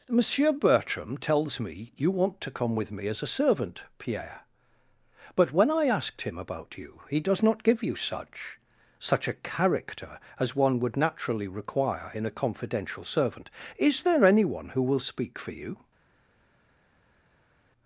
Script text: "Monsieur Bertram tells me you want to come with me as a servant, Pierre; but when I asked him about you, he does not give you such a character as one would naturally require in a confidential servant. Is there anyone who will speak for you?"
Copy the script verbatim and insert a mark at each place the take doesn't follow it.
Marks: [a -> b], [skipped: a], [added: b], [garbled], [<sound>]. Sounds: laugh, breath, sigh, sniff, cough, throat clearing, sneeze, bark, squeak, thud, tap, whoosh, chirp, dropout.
"Monsieur Bertram tells me you want to come with me as a servant, Pierre; but when I asked him about you, he does not give you such [added: such] a character as one would naturally require in a confidential servant. Is there anyone who will speak for you?"